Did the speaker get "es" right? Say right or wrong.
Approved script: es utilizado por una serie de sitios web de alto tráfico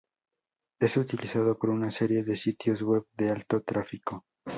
right